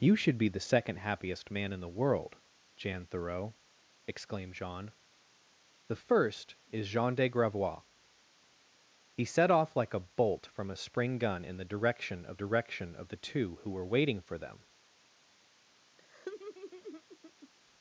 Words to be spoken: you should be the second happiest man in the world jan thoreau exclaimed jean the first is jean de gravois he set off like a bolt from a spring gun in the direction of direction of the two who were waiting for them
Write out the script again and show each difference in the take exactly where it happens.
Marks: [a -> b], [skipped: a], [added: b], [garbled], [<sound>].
you should be the second happiest man in the world jan thoreau exclaimed jean the first is jean de gravois he set off like a bolt from a spring gun in the direction of direction of the two who were waiting for them [laugh]